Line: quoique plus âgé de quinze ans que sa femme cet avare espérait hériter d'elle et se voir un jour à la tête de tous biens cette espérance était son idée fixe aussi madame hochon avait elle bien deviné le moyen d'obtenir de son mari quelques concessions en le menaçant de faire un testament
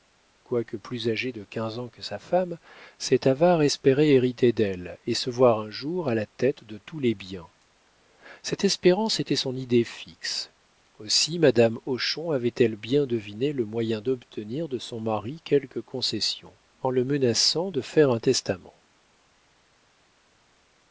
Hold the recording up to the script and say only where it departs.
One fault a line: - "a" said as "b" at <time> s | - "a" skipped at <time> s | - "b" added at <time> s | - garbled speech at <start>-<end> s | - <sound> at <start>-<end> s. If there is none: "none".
- "les" added at 7.0 s